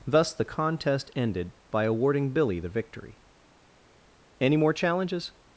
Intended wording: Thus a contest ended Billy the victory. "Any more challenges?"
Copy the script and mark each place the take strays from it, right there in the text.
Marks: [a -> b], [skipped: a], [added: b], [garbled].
Thus [a -> the] contest ended [added: by awarding] Billy the victory. "Any more challenges?"